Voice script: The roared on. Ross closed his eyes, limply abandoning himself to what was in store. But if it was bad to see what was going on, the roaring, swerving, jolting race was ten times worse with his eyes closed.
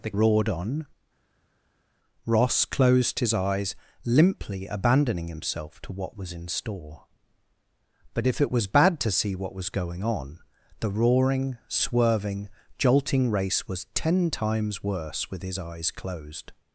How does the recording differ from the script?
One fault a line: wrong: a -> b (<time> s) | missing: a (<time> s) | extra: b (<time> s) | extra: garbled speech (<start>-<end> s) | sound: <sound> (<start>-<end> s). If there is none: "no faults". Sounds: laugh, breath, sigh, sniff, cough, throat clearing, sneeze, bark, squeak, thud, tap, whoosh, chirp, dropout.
no faults